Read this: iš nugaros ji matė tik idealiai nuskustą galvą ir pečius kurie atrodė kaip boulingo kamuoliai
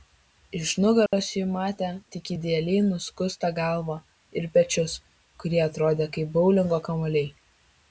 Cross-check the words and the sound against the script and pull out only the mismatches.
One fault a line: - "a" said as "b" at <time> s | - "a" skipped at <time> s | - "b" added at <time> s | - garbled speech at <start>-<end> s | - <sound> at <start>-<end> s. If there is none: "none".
- dropout at 1.1-1.1 s